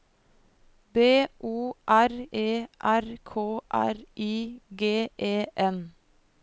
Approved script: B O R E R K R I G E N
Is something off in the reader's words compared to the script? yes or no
no